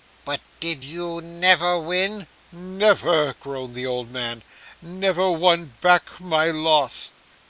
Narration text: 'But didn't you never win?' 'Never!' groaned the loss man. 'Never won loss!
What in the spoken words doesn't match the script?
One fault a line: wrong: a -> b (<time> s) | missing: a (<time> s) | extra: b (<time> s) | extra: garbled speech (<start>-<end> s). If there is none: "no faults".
wrong: didn't -> did (0.6 s)
wrong: loss -> old (3.9 s)
extra: back my (5.8 s)